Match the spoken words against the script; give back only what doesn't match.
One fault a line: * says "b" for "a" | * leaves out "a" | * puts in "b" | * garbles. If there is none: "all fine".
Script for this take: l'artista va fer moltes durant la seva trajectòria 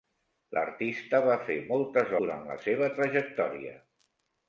all fine